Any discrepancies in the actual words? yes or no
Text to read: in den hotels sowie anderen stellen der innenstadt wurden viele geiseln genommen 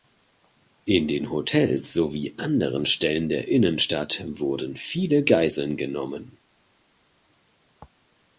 no